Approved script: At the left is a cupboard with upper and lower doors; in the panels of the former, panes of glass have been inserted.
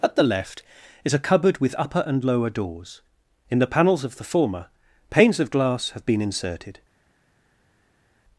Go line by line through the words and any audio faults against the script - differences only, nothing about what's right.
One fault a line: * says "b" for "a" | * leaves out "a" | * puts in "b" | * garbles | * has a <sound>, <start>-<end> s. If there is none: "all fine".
all fine